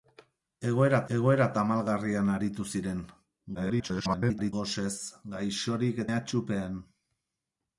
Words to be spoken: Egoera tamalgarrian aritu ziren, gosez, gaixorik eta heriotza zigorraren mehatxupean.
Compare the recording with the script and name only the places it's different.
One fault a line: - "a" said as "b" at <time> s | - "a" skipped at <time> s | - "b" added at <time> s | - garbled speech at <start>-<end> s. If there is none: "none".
- "egoera" added at 1.2 s
- garbled speech at 3.5-4.5 s
- "eta heriotza zigorraren" skipped at 6.0 s